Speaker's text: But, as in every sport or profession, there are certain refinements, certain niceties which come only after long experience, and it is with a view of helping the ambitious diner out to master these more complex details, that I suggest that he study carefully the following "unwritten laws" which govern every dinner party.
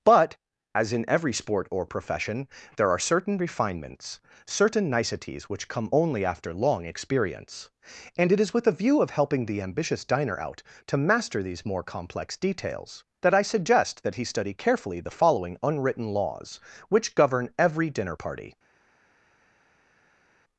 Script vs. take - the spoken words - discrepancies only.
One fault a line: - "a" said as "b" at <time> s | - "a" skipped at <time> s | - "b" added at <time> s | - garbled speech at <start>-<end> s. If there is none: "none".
none